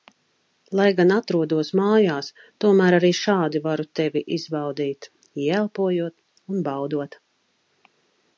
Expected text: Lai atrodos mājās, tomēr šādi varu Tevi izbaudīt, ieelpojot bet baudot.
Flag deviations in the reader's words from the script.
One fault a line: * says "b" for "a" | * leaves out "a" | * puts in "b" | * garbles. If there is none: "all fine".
* puts in "gan"
* puts in "arī"
* says "un" for "bet"